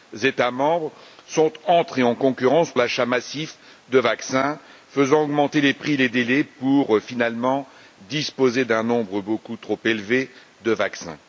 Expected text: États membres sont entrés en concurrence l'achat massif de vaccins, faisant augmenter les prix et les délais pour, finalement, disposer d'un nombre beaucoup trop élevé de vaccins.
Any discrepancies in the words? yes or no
no